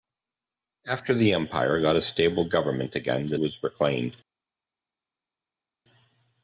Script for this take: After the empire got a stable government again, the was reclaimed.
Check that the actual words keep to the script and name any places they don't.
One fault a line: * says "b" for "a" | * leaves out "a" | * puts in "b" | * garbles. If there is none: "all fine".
all fine